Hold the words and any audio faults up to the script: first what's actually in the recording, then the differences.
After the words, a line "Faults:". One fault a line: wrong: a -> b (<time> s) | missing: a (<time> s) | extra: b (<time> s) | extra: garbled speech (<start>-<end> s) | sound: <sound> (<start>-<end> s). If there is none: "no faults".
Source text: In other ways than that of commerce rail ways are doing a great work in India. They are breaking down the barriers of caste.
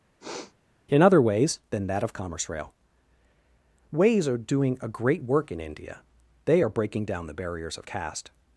In other ways than that of commerce rail ways are doing a great work in India. They are breaking down the barriers of caste.
Faults:
sound: sniff (0.2-0.5 s)